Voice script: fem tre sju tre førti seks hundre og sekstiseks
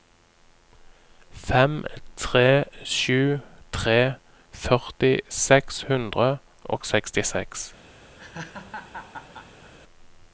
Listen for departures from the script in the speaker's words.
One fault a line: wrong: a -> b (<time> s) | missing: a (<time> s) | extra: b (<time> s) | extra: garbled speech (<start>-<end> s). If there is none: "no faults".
no faults